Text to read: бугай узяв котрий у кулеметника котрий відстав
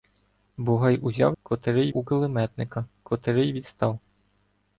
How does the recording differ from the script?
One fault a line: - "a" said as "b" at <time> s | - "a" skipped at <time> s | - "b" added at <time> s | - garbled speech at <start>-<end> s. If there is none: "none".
none